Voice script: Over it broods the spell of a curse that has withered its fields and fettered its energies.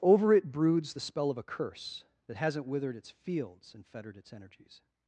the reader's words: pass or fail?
fail